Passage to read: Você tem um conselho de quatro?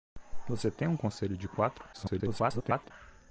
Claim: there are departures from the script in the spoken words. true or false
true